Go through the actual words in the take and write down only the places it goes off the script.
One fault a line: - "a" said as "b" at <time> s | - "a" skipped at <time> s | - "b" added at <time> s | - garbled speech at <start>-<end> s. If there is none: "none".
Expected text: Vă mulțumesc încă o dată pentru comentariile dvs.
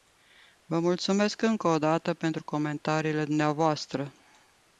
none